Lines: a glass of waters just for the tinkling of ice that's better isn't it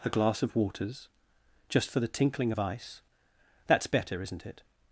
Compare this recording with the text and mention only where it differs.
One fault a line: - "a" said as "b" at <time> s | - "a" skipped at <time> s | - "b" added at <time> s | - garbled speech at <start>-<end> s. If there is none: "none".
none